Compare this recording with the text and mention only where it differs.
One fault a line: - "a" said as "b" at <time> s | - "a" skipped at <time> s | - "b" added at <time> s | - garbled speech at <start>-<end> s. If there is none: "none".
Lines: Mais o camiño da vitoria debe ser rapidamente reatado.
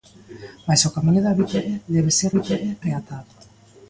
- "rapidamente" said as "vitoria" at 2.4 s